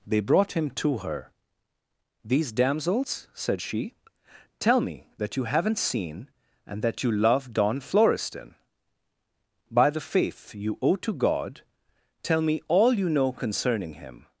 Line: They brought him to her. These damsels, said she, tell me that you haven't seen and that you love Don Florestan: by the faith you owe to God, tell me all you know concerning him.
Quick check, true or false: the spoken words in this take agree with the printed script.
true